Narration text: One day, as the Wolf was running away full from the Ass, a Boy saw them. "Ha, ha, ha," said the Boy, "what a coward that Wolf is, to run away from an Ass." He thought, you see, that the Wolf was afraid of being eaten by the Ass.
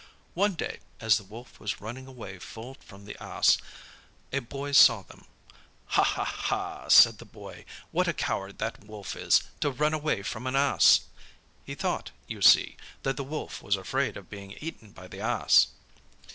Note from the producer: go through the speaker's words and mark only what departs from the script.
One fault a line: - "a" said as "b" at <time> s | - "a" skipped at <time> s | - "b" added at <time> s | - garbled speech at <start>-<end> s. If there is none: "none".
none